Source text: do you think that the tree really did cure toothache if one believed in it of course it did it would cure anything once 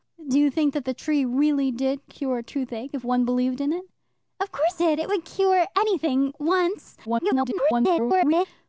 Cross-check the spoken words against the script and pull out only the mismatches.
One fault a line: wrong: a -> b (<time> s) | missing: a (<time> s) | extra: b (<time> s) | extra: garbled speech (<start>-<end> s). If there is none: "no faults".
missing: it (4.8 s)
extra: garbled speech (7.0-8.5 s)